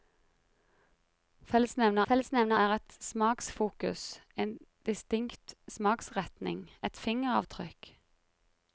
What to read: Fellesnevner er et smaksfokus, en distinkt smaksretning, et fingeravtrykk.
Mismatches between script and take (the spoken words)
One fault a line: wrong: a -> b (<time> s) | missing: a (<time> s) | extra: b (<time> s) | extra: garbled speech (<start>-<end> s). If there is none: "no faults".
extra: fellesnevner (2.1 s)